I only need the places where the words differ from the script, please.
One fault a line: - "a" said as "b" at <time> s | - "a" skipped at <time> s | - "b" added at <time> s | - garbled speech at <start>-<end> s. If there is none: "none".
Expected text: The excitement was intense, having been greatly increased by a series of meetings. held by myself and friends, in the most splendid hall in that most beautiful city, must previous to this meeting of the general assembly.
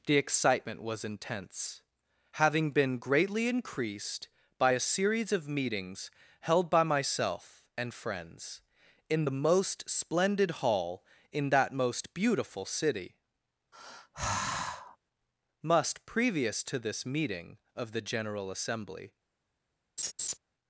none